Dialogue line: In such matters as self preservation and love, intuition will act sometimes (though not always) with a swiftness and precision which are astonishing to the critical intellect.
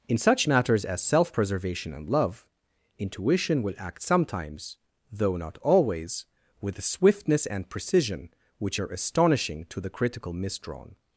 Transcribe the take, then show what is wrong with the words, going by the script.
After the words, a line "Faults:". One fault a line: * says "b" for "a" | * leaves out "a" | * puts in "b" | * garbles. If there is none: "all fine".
In such matters as self preservation and love, intuition will act sometimes (though not always) with a swiftness and precision which are astonishing to the critical misdrawn.
Faults:
* says "misdrawn" for "intellect"